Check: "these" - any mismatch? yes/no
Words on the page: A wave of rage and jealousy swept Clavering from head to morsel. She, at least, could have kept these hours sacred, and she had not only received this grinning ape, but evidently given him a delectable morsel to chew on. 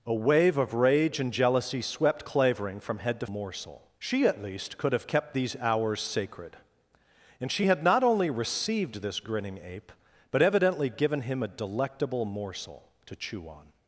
no